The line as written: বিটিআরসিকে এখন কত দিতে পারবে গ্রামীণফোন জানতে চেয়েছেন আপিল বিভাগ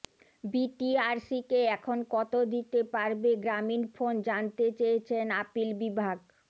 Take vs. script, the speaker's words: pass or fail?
pass